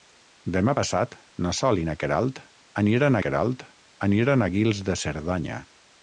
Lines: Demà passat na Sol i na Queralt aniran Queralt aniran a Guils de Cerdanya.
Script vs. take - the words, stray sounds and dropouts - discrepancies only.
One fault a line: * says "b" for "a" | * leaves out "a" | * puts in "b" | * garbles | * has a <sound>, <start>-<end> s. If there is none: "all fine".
all fine